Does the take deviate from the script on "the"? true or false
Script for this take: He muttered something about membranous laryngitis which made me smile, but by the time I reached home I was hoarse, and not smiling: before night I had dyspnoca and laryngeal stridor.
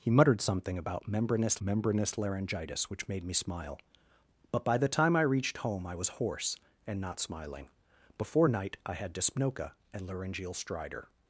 false